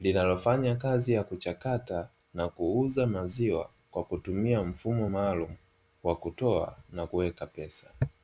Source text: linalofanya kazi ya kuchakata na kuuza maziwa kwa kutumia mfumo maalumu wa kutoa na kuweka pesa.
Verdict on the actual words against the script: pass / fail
pass